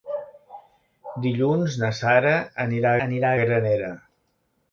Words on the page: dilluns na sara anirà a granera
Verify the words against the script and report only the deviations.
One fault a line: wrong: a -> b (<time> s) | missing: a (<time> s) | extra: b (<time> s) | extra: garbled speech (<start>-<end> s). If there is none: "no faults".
extra: anirà (3.1 s)